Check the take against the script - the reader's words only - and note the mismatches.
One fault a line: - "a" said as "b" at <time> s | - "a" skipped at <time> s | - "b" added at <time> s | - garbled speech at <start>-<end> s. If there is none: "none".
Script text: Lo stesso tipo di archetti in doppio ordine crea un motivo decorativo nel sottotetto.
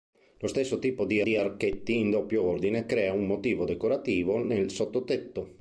- "di" added at 1.2 s